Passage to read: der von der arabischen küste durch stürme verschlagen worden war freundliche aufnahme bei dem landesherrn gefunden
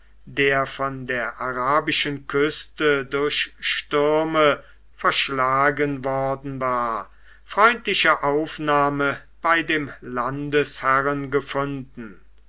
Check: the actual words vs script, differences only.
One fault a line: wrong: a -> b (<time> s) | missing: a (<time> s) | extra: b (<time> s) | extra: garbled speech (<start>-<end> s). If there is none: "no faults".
no faults